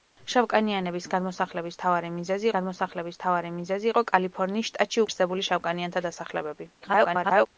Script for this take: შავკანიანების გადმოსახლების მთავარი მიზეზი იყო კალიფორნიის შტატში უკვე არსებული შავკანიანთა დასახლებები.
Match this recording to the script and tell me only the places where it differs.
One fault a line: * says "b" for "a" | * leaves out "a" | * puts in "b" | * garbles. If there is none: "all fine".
* puts in "გადმოსახლების მთავარი მიზეზი"
* leaves out "უკვე"
* garbles